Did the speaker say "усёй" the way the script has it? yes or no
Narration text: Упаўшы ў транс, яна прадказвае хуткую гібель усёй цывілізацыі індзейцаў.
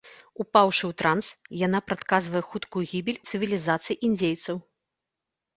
no